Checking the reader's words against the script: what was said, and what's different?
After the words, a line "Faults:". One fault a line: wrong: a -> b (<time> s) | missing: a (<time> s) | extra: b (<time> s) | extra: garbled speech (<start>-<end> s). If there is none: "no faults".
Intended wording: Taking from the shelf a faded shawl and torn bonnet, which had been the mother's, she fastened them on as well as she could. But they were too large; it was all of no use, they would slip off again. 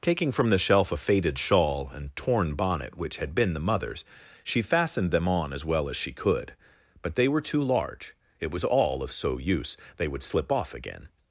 Taking from the shelf a faded shawl and torn bonnet, which had been the mother's, she fastened them on as well as she could. But they were too large; it was all of so use, they would slip off again.
Faults:
wrong: no -> so (9.1 s)